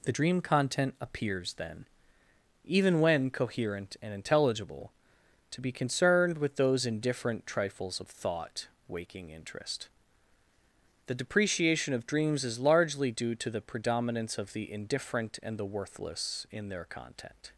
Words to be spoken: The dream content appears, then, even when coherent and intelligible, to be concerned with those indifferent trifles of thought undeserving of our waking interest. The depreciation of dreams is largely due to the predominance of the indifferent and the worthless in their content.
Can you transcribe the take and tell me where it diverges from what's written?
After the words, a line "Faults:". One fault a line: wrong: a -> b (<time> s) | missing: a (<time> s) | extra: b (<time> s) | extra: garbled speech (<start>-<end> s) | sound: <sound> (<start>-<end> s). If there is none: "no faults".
The dream content appears, then, even when coherent and intelligible, to be concerned with those indifferent trifles of thought waking interest. The depreciation of dreams is largely due to the predominance of the indifferent and the worthless in their content.
Faults:
missing: undeserving of our (8.7 s)